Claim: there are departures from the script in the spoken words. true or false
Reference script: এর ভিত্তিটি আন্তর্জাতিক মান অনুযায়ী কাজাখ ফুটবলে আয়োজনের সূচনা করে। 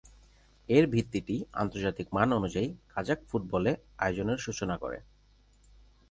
false